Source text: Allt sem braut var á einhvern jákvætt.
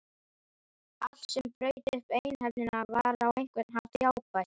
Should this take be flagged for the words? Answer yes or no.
yes